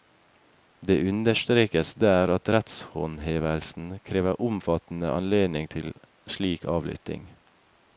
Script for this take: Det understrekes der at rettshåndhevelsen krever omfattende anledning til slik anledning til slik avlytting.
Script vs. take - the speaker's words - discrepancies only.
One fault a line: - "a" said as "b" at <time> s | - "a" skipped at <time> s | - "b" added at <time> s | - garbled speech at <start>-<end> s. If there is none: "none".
- "anledning til slik" skipped at 6.6 s